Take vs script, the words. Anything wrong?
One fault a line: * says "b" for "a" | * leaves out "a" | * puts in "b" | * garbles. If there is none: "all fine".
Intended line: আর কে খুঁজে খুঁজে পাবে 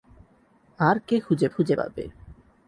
all fine